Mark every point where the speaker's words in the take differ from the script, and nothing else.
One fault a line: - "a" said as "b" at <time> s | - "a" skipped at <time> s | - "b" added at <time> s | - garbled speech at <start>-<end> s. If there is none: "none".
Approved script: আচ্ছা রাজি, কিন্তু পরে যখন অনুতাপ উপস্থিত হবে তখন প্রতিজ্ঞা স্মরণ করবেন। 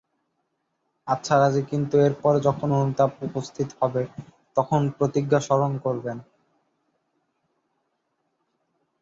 - "এর" added at 2.0 s